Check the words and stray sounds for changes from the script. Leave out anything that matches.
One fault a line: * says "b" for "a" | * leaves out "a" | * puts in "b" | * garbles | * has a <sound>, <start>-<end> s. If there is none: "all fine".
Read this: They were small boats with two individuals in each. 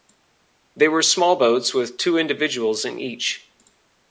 all fine